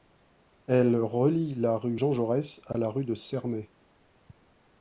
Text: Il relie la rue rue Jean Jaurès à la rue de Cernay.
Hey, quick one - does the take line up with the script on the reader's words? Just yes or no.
no